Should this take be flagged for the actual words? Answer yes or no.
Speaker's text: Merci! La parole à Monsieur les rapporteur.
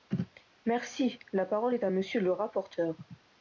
yes